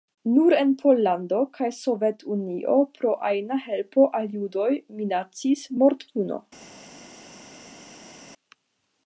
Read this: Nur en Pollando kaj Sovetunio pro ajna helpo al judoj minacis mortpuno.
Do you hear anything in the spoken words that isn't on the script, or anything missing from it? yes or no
no